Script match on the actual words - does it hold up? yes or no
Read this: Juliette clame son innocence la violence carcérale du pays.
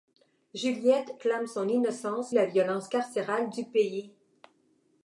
yes